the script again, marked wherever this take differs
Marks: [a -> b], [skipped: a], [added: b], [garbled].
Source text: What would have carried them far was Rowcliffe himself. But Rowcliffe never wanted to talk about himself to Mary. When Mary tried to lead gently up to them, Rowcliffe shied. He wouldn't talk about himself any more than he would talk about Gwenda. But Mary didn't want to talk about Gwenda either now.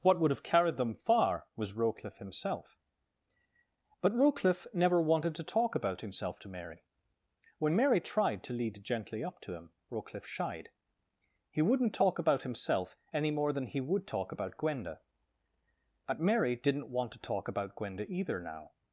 What would have carried them far was Rowcliffe himself. But Rowcliffe never wanted to talk about himself to Mary. When Mary tried to lead gently up to [them, -> him] Rowcliffe shied. He wouldn't talk about himself any more than he would talk about Gwenda. But Mary didn't want to talk about Gwenda either now.